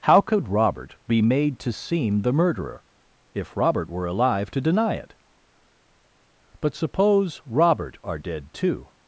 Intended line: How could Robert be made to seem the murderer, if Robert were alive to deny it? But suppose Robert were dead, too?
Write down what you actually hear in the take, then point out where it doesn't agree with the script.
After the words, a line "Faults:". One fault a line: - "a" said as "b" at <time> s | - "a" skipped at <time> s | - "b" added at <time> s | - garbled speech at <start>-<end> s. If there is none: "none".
How could Robert be made to seem the murderer, if Robert were alive to deny it? But suppose Robert are dead, too?
Faults:
- "were" said as "are" at 8.0 s